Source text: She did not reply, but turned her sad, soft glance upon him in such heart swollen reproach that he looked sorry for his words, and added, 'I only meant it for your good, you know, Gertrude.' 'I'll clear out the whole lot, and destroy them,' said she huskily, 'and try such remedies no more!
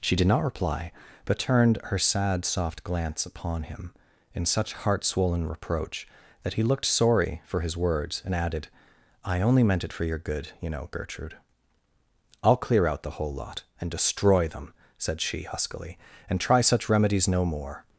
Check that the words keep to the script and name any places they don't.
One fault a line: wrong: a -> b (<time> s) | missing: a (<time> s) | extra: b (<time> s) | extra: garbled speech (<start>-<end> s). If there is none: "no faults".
no faults